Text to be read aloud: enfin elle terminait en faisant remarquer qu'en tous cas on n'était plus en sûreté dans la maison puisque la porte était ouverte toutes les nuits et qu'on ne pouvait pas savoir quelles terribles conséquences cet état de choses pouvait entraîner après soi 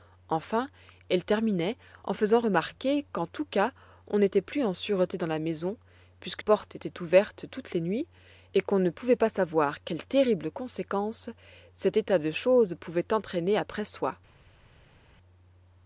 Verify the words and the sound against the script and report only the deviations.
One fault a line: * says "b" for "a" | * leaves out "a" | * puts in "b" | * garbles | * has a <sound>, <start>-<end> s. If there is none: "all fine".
* leaves out "la"